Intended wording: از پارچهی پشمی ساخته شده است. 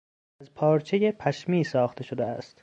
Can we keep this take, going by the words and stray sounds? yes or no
yes